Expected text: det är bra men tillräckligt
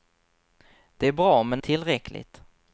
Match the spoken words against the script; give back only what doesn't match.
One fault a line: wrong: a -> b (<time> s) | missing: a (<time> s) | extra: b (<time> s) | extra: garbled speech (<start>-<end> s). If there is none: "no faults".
no faults